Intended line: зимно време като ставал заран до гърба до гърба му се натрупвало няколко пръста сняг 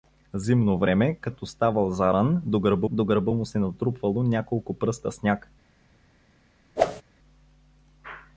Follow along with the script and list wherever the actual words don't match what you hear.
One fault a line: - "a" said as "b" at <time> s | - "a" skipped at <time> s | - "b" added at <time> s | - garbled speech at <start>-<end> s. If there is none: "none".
none